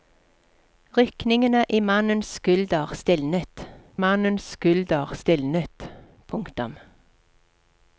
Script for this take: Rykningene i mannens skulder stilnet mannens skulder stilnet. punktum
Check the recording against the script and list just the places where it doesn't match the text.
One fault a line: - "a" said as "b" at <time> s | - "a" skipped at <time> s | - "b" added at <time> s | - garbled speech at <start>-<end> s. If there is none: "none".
none